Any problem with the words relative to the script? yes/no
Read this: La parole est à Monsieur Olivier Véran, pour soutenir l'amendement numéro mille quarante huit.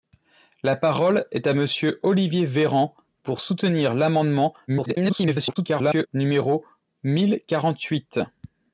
yes